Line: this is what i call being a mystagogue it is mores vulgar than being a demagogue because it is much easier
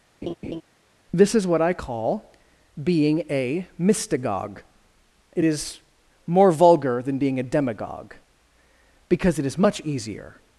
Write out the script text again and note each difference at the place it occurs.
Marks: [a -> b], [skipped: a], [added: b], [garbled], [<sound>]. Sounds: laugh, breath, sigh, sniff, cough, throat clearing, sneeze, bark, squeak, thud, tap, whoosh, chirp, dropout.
[laugh] this is what i call being a mystagogue it is [mores -> more] vulgar than being a demagogue because it is much easier